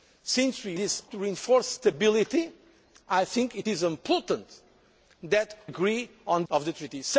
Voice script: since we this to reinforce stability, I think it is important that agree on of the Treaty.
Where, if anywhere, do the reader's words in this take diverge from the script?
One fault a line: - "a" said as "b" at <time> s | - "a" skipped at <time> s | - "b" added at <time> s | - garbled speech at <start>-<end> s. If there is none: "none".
none